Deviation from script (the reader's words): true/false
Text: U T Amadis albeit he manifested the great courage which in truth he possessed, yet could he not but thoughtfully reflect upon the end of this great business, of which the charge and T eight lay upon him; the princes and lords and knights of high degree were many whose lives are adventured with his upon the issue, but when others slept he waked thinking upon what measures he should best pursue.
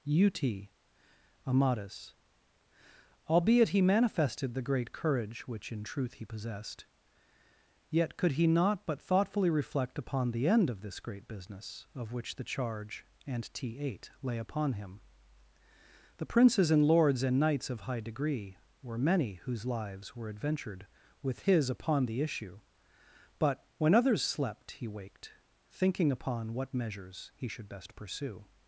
true